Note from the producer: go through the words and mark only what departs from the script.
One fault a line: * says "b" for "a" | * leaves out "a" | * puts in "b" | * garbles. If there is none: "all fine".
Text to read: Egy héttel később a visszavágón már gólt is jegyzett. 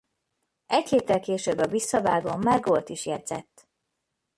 all fine